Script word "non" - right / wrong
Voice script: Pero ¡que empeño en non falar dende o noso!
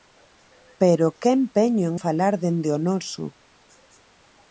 wrong